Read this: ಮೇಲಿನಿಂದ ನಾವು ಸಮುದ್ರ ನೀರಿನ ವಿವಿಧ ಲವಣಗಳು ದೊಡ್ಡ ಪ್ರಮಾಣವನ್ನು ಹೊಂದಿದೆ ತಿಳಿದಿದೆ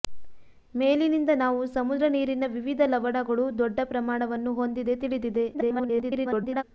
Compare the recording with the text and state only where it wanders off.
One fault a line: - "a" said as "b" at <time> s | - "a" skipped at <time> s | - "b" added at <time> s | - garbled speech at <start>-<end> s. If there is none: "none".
- garbled speech at 5.5-6.6 s